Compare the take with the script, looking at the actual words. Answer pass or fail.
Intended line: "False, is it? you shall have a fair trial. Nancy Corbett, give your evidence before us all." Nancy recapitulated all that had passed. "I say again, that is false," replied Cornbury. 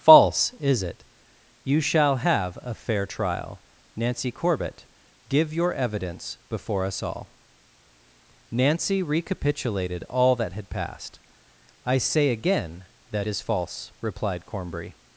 pass